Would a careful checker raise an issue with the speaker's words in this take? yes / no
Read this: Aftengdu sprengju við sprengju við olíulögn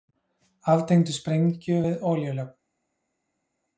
yes